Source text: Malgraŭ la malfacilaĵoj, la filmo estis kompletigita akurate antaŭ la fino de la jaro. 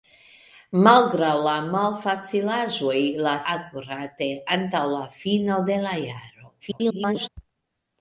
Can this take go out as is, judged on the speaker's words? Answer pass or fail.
fail